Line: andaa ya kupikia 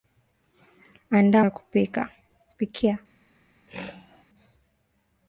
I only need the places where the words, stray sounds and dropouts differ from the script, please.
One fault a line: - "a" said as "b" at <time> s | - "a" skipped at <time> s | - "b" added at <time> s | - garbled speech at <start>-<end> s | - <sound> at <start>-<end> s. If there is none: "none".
- throat clearing at 3.7-4.2 s